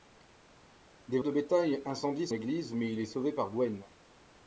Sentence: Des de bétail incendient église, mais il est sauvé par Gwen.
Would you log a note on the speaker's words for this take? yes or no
no